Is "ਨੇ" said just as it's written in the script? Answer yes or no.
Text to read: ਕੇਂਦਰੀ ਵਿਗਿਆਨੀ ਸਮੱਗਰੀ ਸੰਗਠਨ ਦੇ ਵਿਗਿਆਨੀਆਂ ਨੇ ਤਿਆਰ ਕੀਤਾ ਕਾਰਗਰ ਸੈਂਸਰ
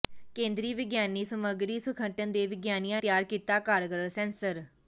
no